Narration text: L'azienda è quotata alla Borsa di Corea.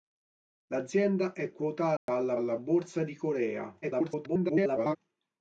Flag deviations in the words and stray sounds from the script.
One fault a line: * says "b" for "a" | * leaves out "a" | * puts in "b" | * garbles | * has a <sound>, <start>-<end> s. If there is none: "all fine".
* has a dropout, 2.0-2.1 s
* puts in "alla"
* garbles